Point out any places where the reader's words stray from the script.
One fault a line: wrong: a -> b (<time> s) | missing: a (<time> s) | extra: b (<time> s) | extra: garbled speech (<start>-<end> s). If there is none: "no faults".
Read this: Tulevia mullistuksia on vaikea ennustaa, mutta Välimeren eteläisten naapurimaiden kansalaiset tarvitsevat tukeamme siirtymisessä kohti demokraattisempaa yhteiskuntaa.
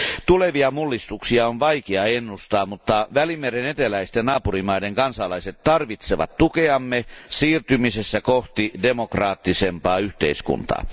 no faults